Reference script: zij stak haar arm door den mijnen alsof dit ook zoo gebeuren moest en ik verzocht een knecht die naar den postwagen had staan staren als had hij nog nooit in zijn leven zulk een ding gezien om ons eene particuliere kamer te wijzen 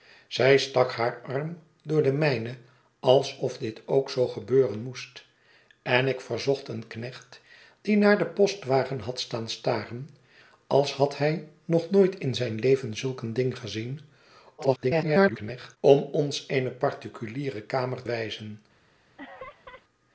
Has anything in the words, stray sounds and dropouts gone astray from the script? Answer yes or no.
yes